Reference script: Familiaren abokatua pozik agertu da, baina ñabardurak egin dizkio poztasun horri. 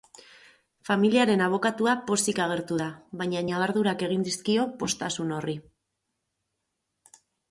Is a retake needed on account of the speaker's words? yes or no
no